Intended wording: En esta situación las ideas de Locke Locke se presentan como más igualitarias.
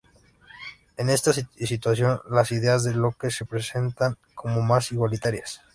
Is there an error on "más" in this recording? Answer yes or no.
no